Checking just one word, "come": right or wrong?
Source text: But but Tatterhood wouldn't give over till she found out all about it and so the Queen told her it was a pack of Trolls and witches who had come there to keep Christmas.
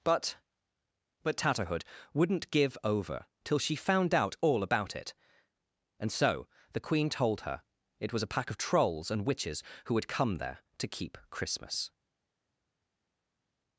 right